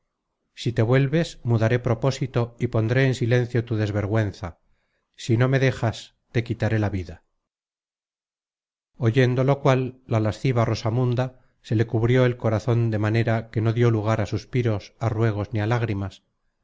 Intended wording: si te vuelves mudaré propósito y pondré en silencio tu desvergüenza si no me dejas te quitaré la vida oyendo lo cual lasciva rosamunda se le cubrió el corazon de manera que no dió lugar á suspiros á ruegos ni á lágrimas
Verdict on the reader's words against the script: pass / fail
fail